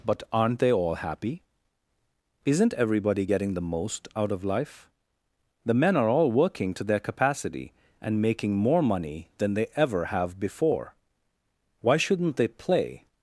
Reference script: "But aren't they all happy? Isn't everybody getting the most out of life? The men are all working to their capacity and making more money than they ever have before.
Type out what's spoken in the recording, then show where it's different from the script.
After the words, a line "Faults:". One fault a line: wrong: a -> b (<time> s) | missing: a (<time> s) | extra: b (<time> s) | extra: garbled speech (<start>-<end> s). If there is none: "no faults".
"But aren't they all happy? Isn't everybody getting the most out of life? The men are all working to their capacity and making more money than they ever have before. Why shouldn't they play
Faults:
extra: Why shouldn't they play (11.8 s)